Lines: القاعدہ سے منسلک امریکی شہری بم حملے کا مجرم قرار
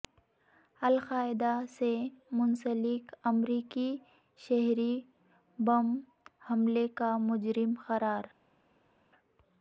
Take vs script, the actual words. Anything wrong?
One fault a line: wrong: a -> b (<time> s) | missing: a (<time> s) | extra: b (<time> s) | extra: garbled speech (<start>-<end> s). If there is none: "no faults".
no faults